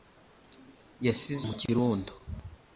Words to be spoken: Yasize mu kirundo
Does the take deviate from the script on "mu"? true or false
false